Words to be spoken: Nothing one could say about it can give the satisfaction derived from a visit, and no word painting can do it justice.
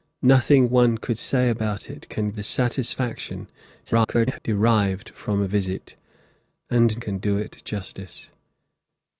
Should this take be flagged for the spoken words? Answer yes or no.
yes